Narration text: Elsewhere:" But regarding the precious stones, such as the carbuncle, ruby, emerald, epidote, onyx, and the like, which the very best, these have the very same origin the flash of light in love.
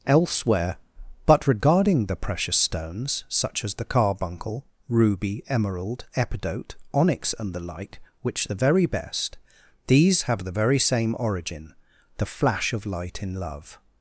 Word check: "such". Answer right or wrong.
right